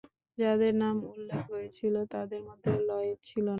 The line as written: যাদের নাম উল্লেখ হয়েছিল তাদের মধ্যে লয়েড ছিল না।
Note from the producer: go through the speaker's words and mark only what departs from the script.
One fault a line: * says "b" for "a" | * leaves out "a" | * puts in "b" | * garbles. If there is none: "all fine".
all fine